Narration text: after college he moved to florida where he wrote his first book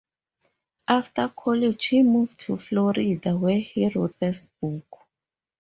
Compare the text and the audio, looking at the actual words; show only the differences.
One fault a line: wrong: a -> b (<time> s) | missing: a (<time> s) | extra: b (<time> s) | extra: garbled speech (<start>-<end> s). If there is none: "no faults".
missing: his (4.2 s)